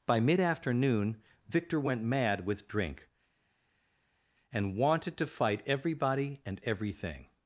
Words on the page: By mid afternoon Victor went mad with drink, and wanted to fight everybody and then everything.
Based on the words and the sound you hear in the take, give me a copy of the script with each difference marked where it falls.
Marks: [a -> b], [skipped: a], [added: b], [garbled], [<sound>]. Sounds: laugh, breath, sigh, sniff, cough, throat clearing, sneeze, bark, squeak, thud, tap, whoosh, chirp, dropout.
By mid afternoon Victor went mad with drink, and wanted to fight everybody and [skipped: then] everything.